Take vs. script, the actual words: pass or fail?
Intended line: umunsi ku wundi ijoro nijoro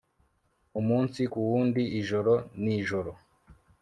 pass